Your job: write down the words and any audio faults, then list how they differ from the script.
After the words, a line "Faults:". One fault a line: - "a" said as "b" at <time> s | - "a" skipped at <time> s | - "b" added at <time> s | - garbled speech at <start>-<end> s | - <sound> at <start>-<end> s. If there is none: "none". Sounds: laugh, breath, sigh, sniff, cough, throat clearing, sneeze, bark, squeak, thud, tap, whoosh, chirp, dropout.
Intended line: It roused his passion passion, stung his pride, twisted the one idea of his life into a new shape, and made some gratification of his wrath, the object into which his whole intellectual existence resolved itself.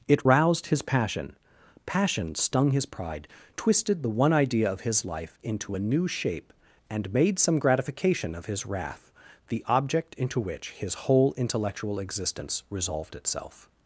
It roused his passion passion, stung his pride, twisted the one idea of his life into a new shape, and made some gratification of his wrath, the object into which his whole intellectual existence resolved itself.
Faults:
none